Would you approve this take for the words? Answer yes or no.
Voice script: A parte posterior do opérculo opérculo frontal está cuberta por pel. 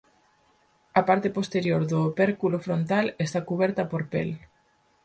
no